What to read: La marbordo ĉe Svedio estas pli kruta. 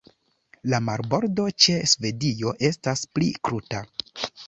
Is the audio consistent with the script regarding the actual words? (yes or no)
yes